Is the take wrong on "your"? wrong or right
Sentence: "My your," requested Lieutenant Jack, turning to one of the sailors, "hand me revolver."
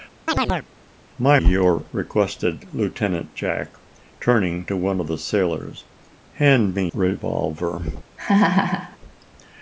right